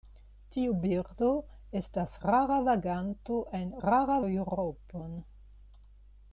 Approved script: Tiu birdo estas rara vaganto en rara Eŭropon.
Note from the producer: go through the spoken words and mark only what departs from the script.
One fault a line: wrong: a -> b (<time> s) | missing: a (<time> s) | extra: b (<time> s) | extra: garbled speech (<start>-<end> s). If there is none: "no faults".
no faults